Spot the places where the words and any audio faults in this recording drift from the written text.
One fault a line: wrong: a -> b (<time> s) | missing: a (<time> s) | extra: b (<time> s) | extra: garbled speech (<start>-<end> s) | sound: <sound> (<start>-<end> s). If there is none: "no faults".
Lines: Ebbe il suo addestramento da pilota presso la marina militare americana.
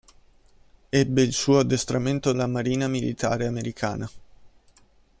missing: da pilota presso (2.3 s)